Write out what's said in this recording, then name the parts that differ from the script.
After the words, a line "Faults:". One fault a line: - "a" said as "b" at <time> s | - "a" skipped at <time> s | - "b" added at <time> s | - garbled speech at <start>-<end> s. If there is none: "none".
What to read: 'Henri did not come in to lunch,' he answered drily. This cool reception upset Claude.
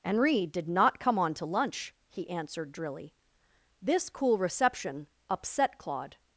'Henri did not come on to lunch,' he answered drily. This cool reception upset Claude.
Faults:
- "in" said as "on" at 1.2 s